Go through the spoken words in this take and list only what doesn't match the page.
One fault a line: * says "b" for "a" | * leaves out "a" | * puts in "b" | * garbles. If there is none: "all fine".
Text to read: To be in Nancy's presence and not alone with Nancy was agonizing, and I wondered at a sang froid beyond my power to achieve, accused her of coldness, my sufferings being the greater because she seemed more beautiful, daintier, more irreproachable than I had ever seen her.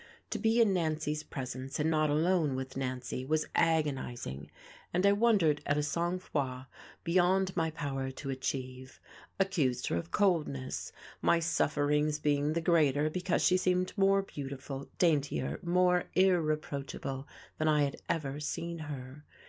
all fine